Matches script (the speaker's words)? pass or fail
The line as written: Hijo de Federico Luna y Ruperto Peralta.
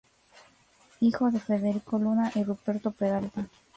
pass